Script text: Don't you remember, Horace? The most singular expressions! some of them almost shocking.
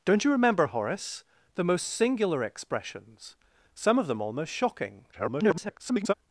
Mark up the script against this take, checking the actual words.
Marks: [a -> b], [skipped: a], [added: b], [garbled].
Don't you remember, Horace? The most singular expressions! some of them almost shocking. [garbled]